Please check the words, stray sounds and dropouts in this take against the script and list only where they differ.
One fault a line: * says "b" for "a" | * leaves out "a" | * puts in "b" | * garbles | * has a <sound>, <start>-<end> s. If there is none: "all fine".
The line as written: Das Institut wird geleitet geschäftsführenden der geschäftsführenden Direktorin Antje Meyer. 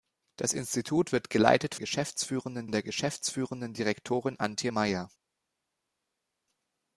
all fine